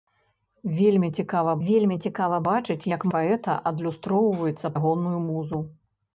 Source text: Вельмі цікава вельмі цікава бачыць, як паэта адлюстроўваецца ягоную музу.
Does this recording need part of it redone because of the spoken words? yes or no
no